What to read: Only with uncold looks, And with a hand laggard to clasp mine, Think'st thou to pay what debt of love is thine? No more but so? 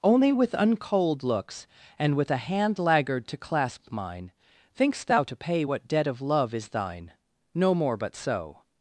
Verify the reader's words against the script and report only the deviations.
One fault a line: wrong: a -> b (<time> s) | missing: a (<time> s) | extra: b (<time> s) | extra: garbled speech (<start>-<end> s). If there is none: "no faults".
no faults